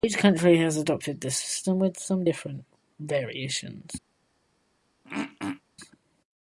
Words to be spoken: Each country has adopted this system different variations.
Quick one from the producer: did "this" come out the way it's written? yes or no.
yes